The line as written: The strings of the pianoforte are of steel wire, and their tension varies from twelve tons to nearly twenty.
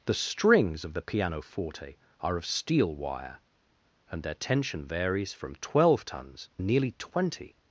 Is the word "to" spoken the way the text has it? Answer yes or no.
no